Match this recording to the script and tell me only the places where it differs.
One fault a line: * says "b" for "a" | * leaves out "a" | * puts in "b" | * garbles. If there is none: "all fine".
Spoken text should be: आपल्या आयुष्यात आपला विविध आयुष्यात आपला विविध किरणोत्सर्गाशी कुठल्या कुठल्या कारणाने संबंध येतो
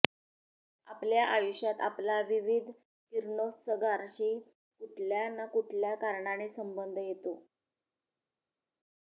* leaves out "आयुष्यात आपला विविध"
* puts in "ना"